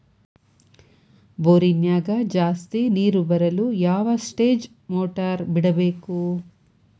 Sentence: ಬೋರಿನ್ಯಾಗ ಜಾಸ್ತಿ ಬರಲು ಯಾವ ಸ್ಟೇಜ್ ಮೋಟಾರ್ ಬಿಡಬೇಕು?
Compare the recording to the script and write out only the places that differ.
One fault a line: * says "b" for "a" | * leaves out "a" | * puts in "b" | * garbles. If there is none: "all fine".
* puts in "ನೇರು"